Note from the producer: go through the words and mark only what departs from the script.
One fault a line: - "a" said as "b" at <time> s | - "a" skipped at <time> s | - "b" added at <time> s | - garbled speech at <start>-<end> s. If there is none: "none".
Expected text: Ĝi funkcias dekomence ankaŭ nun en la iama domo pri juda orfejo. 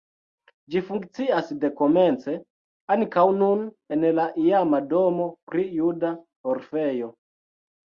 none